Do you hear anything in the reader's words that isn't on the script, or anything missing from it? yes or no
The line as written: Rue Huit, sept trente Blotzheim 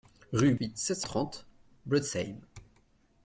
no